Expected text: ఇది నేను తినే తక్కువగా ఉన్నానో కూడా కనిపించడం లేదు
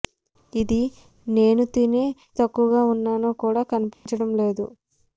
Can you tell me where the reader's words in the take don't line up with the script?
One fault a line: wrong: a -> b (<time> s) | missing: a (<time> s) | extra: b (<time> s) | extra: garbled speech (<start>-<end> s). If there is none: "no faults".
no faults